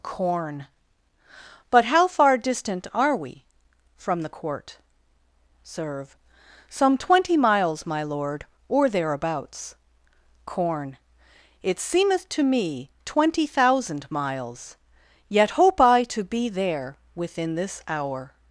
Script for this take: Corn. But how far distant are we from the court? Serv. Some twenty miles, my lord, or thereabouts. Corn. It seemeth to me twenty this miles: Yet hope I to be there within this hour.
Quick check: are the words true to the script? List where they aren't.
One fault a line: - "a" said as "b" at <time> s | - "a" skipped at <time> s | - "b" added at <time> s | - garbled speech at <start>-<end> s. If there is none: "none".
- "this" said as "thousand" at 13.5 s